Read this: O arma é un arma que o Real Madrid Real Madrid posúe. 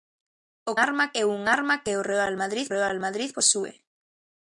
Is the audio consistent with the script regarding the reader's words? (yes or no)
yes